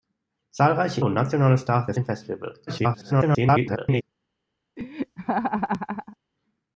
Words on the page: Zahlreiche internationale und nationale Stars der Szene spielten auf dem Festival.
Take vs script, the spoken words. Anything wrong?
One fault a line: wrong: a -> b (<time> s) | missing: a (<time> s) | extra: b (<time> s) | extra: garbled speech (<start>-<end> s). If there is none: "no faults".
missing: internationale (1.0 s)
missing: Szene spielten auf (1.9 s)
extra: garbled speech (2.7-4.0 s)